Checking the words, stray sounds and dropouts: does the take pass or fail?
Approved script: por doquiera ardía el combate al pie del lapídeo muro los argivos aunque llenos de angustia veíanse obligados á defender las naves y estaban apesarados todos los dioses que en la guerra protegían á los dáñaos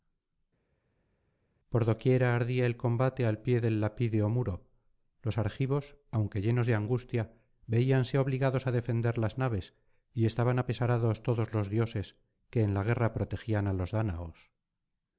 pass